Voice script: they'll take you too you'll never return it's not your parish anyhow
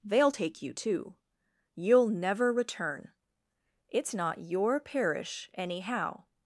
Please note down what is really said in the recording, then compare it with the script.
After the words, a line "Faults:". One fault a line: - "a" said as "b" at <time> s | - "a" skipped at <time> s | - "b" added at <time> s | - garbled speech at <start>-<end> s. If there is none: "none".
they'll take you too you'll never return it's not your parish anyhow
Faults:
none